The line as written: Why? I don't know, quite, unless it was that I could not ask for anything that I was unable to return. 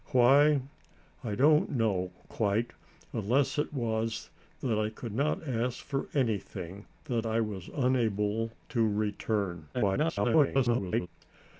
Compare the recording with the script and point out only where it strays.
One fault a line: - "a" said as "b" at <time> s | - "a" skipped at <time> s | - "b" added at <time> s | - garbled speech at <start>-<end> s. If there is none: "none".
- garbled speech at 9.7-11.1 s